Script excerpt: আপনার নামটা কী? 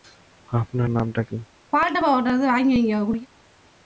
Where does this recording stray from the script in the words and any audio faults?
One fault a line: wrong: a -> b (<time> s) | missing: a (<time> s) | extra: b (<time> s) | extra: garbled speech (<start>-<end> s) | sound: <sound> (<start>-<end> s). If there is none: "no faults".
sound: throat clearing (1.7-3.3 s)